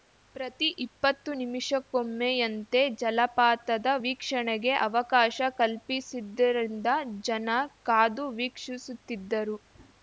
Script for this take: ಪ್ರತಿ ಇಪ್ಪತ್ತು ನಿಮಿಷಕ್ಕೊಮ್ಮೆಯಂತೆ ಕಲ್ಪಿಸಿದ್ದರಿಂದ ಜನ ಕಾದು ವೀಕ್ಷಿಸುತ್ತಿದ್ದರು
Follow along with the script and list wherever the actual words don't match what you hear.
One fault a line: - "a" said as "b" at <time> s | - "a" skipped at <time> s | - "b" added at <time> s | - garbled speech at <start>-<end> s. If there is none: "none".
- "ಜಲಪಾತದ ವೀಕ್ಷಣೆಗೆ ಅವಕಾಶ" added at 3.0 s